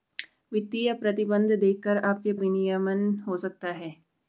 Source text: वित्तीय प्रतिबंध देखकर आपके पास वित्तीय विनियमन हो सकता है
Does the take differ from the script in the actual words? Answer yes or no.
yes